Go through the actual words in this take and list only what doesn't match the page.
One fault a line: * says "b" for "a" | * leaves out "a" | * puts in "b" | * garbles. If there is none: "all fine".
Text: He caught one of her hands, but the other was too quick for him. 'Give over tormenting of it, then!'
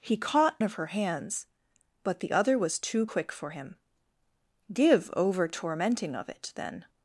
* leaves out "one"